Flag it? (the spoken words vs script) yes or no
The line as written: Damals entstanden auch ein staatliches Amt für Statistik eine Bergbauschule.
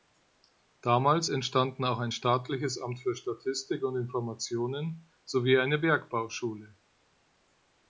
yes